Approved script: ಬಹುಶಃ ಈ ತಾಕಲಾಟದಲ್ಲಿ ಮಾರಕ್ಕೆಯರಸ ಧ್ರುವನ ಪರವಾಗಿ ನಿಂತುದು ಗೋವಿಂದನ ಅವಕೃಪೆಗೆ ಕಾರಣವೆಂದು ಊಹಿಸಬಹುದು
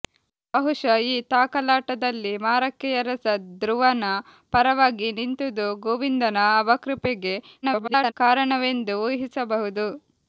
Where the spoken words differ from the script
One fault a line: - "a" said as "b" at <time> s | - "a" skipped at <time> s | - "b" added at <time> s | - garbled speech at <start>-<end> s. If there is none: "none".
- garbled speech at 7.6-8.1 s